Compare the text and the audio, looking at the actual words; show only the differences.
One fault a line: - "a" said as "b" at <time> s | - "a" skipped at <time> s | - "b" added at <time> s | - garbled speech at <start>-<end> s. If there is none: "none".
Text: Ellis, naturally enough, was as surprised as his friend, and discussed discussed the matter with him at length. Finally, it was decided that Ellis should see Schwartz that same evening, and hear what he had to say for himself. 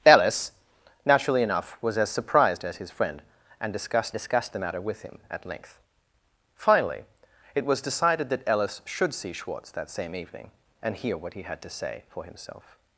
none